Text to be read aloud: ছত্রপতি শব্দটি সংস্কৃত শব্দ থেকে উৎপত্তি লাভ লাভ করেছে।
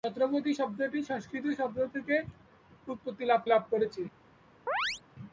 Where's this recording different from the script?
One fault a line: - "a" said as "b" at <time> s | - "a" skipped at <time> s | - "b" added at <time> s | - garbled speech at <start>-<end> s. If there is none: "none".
none